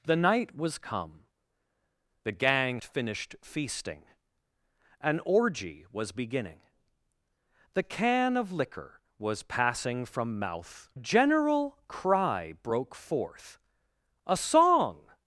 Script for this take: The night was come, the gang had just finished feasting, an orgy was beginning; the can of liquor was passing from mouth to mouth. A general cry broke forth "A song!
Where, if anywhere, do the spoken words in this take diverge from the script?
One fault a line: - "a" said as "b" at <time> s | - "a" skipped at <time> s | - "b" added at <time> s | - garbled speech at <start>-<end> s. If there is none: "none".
- "had just" skipped at 2.8 s
- "to mouth A" skipped at 10.9 s